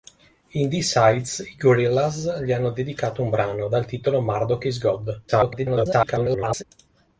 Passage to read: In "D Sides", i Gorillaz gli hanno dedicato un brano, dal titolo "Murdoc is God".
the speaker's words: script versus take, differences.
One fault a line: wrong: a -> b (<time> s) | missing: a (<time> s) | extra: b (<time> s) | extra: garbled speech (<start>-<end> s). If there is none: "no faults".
extra: garbled speech (5.3-6.6 s)